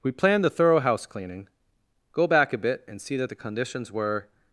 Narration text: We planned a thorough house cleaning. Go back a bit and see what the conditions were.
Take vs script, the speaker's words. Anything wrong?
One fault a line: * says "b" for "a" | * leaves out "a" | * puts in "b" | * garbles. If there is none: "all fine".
* says "the" for "a"
* says "that" for "what"